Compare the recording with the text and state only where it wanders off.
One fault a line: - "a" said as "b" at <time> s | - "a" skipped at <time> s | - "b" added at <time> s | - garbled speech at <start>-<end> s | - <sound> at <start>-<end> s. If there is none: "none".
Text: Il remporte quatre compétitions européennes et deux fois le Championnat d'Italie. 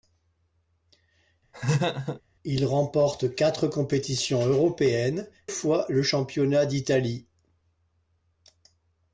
- laugh at 1.5-2.2 s
- "et deux" skipped at 5.3 s